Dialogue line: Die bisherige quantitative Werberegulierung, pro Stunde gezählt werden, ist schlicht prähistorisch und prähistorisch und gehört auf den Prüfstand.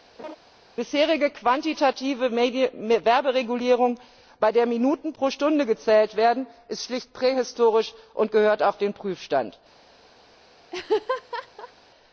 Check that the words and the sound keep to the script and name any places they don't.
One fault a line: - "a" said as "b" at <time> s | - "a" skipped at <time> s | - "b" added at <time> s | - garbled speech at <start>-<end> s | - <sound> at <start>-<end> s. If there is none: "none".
- laugh at 0.2-0.4 s
- "bei der Minuten" added at 4.4 s
- "prähistorisch und" skipped at 8.3 s
- laugh at 10.7-11.7 s